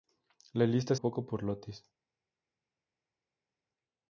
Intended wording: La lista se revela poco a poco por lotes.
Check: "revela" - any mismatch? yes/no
yes